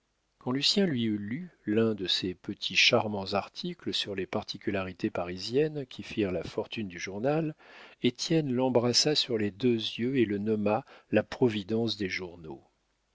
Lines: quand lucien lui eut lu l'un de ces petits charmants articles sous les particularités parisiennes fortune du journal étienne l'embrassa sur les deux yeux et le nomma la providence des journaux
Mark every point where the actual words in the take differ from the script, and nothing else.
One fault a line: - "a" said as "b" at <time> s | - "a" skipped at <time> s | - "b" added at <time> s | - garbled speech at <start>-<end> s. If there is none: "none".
- "sous" said as "sur" at 3.9 s
- "qui firent la" added at 5.8 s